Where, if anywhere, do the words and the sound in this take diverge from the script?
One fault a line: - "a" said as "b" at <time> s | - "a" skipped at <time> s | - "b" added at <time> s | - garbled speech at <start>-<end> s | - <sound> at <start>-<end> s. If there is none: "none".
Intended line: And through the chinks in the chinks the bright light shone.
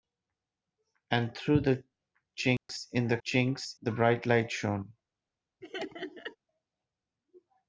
- dropout at 2.6-2.7 s
- laugh at 5.6-6.4 s